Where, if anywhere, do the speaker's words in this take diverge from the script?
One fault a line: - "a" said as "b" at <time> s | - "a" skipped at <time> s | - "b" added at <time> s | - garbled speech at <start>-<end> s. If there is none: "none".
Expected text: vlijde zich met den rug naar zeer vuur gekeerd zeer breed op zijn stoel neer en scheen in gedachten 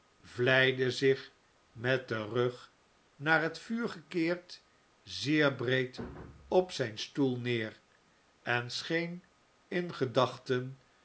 - "zeer" said as "het" at 3.4 s